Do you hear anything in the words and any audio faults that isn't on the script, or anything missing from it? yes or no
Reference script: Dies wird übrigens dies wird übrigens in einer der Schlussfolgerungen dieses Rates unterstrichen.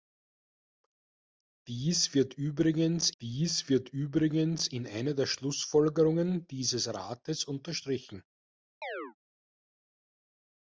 yes